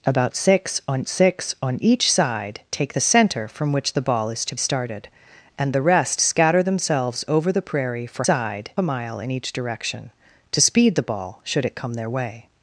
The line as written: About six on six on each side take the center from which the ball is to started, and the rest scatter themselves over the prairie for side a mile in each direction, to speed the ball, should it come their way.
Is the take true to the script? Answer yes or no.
yes